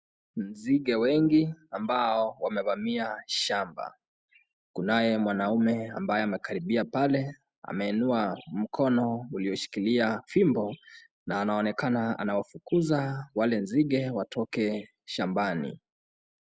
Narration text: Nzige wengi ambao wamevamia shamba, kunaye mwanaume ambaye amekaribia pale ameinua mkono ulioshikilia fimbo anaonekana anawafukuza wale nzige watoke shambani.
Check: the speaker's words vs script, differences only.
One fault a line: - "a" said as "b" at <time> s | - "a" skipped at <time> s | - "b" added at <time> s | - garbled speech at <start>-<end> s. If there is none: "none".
- "na" added at 11.3 s